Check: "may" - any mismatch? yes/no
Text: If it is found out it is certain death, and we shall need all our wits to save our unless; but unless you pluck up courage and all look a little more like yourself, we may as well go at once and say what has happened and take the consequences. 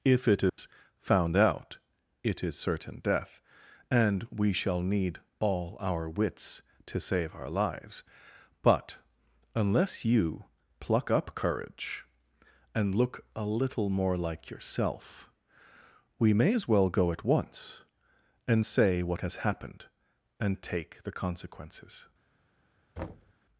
no